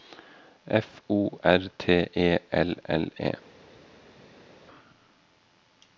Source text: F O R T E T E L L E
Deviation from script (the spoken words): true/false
true